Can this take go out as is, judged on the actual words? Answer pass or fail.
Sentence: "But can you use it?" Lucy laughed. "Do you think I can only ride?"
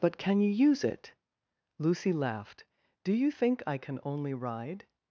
pass